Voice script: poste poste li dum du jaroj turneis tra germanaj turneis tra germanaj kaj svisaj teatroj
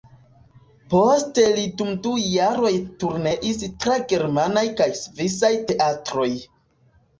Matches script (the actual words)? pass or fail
fail